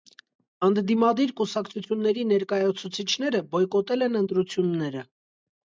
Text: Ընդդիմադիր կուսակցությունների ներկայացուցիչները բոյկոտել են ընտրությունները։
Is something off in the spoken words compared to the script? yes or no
no